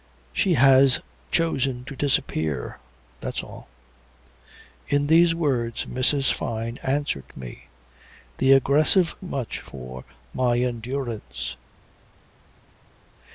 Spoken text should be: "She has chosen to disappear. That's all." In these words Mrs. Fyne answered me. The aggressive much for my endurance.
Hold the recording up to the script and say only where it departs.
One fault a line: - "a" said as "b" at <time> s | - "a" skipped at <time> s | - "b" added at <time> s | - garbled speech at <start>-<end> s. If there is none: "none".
none